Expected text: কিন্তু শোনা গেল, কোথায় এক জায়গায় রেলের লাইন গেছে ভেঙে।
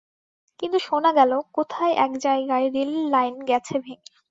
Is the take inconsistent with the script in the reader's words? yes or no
no